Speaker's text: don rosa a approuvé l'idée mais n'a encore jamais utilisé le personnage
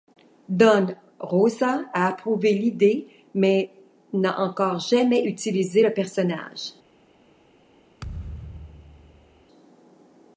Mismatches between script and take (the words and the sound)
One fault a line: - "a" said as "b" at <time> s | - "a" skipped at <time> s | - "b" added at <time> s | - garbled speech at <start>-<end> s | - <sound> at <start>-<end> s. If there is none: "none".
- thud at 8.0-9.4 s